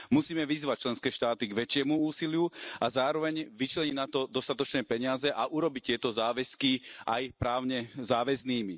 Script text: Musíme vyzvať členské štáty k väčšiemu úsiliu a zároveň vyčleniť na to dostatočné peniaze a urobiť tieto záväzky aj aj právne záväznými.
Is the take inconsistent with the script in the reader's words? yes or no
yes